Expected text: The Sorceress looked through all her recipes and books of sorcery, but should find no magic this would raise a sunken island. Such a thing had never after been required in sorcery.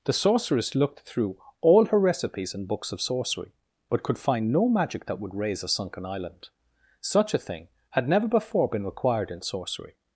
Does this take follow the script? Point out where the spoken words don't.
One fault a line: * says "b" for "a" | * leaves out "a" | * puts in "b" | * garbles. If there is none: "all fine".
* says "could" for "should"
* says "that" for "this"
* says "before" for "after"